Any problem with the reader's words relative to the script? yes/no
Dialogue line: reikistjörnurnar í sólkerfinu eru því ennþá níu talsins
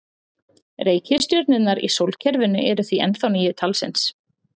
no